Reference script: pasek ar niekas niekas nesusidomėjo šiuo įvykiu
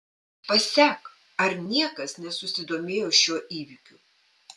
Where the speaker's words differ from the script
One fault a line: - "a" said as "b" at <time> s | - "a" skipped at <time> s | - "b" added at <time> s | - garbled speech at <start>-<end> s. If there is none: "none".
- "niekas" skipped at 2.1 s